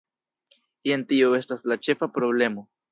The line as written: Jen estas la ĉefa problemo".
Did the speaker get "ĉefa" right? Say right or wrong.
right